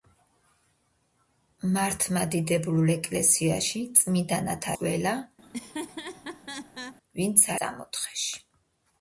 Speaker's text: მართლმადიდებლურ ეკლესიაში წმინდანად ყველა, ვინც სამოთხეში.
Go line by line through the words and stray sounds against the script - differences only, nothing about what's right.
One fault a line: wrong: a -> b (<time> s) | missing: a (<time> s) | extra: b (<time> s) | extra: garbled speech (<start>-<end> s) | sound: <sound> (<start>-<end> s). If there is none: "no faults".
sound: laugh (5.4-7.0 s)